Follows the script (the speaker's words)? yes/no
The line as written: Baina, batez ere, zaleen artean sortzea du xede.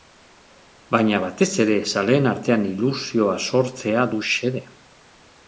no